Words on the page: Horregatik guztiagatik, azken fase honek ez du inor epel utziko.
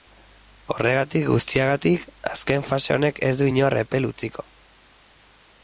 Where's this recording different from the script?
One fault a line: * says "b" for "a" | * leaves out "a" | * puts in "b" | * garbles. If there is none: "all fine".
all fine